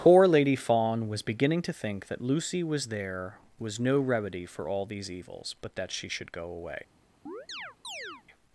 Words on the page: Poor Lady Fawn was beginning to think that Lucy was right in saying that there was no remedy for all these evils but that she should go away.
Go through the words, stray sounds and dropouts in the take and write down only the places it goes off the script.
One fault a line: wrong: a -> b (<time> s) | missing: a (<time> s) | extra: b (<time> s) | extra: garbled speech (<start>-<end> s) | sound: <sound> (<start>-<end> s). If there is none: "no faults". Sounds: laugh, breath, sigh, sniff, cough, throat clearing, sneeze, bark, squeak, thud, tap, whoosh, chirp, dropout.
missing: right in saying that (2.9 s)
sound: chirp (7.3-8.2 s)